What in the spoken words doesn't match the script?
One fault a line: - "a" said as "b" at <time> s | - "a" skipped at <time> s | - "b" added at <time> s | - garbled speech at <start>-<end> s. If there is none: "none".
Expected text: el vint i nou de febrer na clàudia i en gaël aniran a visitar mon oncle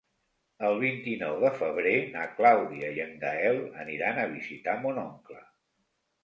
none